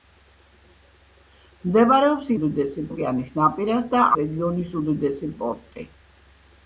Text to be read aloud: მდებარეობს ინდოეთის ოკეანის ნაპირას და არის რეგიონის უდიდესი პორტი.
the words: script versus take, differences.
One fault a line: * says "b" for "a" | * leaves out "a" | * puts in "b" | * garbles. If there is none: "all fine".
* says "უდიდესი" for "ინდოეთის"
* leaves out "არის"